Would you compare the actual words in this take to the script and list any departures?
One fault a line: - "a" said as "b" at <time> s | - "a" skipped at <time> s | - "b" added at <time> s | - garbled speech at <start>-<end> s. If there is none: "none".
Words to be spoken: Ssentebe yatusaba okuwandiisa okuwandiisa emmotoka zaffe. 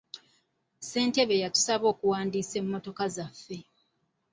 - "okuwandiisa" skipped at 2.5 s